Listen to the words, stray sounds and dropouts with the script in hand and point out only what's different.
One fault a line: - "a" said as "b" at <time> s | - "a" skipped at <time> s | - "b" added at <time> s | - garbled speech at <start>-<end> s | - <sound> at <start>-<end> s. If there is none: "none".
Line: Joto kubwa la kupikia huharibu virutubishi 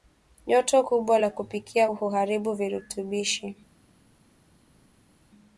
none